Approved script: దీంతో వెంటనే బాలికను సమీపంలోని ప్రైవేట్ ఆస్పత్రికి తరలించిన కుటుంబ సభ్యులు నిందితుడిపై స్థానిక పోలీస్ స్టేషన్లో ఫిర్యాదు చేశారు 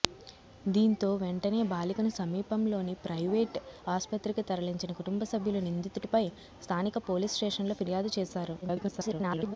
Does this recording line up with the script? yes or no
no